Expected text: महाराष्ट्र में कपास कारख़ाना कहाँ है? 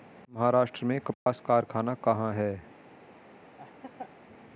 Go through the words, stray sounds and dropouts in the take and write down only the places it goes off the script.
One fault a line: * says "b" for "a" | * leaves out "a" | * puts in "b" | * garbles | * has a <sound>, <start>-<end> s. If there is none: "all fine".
* has a dropout, 1.1-1.3 s
* has a laugh, 3.6-4.1 s